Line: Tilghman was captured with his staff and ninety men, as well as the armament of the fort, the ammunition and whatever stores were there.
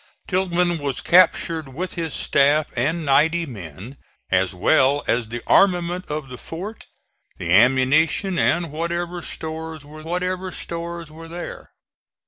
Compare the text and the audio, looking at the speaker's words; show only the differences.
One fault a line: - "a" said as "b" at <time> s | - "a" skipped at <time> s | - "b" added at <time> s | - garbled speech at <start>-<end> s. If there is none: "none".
- "whatever stores were" added at 10.0 s